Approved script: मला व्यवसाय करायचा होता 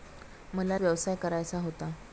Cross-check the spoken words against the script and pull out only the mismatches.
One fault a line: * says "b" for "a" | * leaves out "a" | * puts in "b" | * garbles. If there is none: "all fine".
all fine